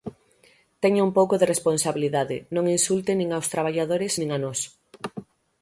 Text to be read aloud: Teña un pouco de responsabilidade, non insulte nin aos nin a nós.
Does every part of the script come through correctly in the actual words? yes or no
no